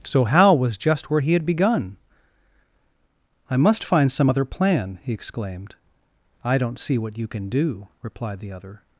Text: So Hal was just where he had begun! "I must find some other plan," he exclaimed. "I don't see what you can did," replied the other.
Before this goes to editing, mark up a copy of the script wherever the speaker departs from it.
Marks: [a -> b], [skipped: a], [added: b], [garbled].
So Hal was just where he had begun! "I must find some other plan," he exclaimed. "I don't see what you can [did," -> do] replied the other.